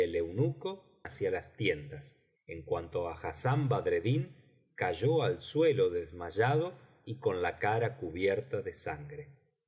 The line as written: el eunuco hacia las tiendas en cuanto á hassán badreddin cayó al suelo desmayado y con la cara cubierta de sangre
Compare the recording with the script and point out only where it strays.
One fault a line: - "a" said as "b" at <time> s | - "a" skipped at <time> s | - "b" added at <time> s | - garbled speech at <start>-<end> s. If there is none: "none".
none